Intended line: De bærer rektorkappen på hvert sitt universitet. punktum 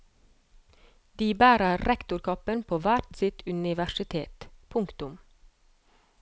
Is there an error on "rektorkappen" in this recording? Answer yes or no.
no